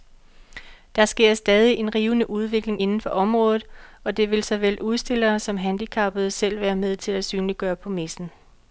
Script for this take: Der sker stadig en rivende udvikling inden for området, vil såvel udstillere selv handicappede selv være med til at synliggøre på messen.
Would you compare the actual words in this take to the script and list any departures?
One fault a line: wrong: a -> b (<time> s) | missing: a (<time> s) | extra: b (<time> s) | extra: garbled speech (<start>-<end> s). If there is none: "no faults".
extra: og det (4.0 s)
wrong: selv -> som (5.4 s)